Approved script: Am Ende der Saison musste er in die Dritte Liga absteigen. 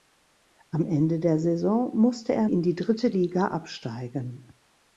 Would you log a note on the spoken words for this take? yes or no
no